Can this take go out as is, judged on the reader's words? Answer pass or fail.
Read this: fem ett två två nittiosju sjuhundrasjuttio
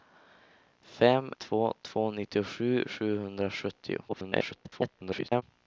fail